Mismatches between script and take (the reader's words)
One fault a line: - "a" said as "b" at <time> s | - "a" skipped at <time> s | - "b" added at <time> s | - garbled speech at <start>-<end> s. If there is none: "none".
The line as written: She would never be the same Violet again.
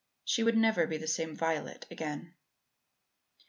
none